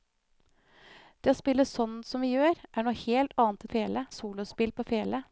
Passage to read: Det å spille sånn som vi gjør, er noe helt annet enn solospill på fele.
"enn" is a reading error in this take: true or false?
true